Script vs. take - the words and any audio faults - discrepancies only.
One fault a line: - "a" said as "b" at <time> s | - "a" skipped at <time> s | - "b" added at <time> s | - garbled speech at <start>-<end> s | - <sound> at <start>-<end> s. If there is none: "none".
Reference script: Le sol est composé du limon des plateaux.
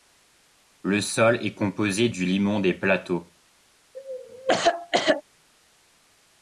- cough at 3.9-5.2 s